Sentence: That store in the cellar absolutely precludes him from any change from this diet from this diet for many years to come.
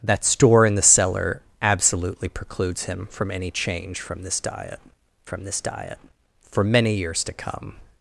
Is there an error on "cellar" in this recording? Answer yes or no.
no